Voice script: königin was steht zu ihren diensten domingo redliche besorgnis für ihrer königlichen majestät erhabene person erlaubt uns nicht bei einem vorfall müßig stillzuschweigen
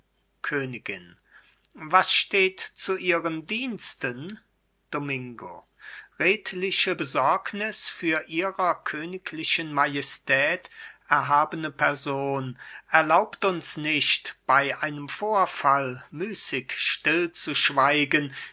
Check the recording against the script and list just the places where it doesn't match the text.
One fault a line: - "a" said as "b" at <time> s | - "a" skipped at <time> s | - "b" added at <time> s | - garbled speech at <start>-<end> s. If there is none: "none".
none